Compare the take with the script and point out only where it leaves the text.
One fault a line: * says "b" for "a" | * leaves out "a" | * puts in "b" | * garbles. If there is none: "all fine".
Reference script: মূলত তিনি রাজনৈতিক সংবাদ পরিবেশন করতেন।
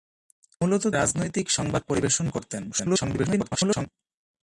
* leaves out "তিনি"
* garbles